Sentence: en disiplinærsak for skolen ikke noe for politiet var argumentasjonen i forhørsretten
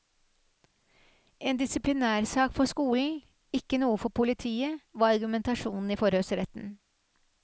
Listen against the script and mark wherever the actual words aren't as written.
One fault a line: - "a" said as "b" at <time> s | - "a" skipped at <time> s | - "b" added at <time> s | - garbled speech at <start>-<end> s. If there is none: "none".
none